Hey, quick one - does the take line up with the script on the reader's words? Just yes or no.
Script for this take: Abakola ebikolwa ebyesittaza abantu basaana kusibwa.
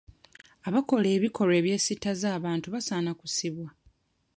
yes